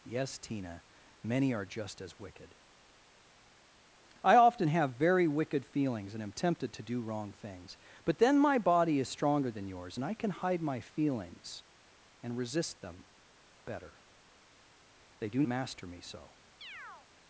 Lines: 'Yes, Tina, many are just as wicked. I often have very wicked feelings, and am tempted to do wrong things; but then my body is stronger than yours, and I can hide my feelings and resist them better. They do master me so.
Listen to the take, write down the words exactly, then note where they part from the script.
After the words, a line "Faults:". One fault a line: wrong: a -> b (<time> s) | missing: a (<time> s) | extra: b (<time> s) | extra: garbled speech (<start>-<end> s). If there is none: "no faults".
'Yes, Tina, many are just as wicked. I often have very wicked feelings, and am tempted to do wrong things; but then my body is stronger than yours, and I can hide my feelings and resist them better. They do master me so.
Faults:
no faults